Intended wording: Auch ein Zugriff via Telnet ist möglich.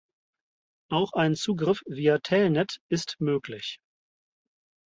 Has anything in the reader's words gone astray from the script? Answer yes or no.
no